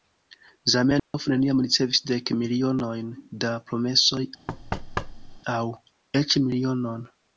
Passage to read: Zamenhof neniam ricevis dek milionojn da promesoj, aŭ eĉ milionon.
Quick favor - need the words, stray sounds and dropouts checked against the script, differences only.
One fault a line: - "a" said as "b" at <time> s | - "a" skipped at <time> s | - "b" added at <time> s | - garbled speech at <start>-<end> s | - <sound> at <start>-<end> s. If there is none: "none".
- dropout at 1.0-1.1 s
- thud at 4.5-5.4 s